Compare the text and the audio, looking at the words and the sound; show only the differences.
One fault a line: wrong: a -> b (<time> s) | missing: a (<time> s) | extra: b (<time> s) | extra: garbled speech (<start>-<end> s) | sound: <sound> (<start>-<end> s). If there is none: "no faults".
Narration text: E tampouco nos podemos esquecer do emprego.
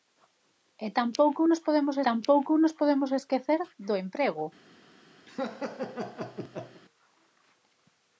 extra: tampouco nos podemos (2.1 s)
sound: laugh (5.3-6.8 s)